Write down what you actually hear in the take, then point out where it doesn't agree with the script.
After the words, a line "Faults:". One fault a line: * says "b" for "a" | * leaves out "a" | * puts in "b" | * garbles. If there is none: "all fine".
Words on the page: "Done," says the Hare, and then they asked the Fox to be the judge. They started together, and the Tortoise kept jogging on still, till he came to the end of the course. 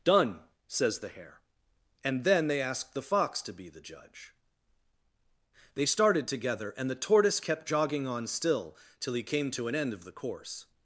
"Done," says the Hare, and then they asked the Fox to be the judge. They started together, and the Tortoise kept jogging on still, till he came to an end of the course.
Faults:
* says "an" for "the"